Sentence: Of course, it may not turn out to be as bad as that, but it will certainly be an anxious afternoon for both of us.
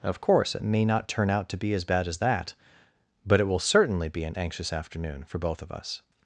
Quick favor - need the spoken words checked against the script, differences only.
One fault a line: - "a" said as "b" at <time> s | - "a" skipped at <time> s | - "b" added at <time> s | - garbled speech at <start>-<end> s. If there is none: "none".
none